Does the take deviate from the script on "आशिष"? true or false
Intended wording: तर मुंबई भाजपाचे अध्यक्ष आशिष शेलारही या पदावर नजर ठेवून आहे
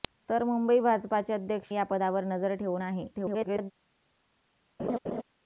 true